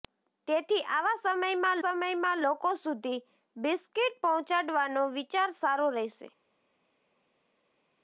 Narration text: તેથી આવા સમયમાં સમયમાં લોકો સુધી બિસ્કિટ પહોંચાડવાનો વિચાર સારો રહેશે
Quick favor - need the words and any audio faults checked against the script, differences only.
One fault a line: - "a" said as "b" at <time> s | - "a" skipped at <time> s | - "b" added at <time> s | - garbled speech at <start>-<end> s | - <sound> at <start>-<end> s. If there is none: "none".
none